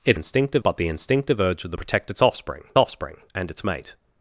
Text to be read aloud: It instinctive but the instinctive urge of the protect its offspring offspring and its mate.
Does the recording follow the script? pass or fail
pass